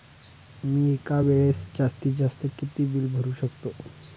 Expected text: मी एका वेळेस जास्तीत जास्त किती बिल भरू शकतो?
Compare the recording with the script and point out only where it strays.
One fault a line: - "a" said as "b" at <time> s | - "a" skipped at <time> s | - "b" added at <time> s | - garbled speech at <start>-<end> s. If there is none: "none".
none